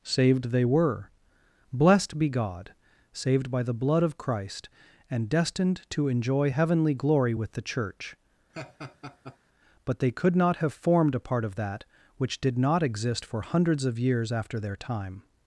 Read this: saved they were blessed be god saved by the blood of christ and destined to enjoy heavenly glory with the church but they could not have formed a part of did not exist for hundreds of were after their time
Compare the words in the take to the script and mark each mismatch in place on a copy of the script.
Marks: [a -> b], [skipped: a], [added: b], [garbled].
saved they were blessed be god saved by the blood of christ and destined to enjoy heavenly glory with the church but they could not have formed a part of [added: that which] did not exist for hundreds of [were -> years] after their time